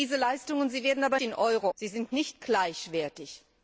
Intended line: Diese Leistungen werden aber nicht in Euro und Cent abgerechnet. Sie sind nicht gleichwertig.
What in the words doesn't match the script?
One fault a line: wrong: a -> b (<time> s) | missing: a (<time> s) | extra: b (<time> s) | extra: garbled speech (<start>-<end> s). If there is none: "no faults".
missing: nicht (1.2 s)
missing: und Cent abgerechnet (1.7 s)